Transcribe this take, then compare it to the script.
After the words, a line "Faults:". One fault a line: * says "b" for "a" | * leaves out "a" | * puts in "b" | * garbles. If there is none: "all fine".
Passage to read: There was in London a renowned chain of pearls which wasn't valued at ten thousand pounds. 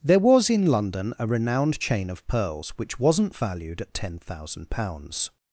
There was in London a renowned chain of pearls which wasn't valued at ten thousand pounds.
Faults:
all fine